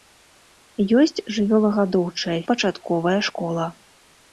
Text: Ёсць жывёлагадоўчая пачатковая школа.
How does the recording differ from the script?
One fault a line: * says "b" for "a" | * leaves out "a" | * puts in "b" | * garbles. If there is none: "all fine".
all fine